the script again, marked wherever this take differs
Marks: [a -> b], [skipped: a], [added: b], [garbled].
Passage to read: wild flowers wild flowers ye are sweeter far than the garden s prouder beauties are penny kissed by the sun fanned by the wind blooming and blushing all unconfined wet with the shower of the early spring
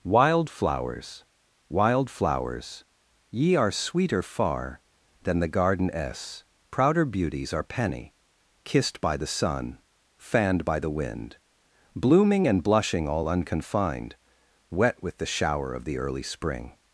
wild flowers wild flowers ye are sweeter far than the garden s prouder beauties are penny kissed by the sun fanned by the wind blooming and blushing all unconfined wet with the shower of the early spring